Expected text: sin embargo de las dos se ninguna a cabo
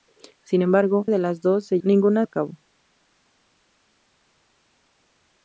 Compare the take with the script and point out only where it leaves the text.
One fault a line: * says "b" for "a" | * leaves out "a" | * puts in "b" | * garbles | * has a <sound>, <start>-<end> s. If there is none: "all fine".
all fine